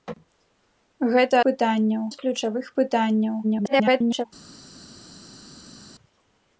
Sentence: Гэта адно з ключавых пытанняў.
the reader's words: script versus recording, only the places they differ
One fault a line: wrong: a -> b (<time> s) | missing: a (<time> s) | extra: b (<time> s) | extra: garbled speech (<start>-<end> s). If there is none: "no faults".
wrong: адно -> пытанняў (1.5 s)
extra: garbled speech (3.4-4.3 s)